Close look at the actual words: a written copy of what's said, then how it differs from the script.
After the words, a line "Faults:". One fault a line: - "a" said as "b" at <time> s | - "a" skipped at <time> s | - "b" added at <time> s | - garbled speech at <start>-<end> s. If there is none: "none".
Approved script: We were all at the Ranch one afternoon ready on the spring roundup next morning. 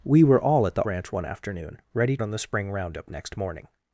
We were all at the Ranch one afternoon ready on the spring roundup next morning.
Faults:
none